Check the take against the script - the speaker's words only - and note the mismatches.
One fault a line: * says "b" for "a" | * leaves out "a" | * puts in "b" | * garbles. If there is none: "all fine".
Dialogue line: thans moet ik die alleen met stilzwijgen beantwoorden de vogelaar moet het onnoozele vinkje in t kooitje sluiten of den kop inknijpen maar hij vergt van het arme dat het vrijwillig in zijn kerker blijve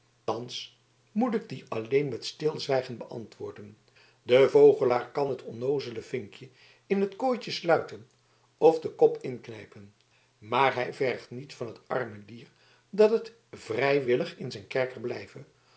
* says "kan" for "moet"
* puts in "niet"
* puts in "dier"